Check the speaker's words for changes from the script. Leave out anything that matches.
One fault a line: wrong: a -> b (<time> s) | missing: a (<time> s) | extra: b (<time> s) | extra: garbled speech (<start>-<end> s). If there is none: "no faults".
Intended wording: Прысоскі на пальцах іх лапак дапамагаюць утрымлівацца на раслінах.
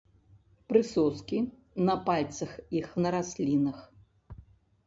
missing: лапак дапамагаюць утрымлівацца (2.9 s)